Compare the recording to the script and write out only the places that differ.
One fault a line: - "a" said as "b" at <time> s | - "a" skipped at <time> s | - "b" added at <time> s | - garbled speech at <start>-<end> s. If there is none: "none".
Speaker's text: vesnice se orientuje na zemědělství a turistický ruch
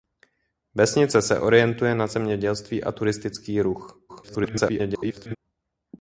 - garbled speech at 4.1-5.4 s